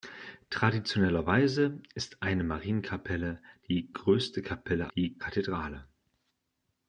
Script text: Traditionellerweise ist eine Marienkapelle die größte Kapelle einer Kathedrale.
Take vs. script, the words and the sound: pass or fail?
fail